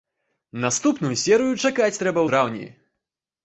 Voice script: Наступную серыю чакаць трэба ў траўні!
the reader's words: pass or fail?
fail